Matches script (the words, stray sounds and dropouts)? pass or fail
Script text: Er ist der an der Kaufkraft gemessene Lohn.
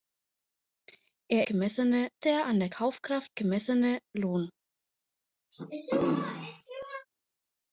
fail